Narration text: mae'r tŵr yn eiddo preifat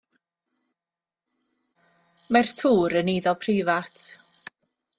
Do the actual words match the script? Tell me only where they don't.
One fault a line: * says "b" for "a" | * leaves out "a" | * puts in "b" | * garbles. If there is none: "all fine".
all fine